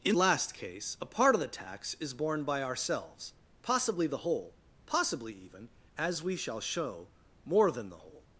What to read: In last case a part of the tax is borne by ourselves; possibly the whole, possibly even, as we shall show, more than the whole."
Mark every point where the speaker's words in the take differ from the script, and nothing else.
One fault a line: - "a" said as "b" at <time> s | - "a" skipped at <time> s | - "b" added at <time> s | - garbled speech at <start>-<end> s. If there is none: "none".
none